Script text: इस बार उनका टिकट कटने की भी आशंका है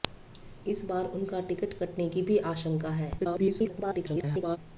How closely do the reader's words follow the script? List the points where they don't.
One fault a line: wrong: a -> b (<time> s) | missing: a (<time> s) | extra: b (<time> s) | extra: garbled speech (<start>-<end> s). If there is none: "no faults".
extra: garbled speech (3.2-4.6 s)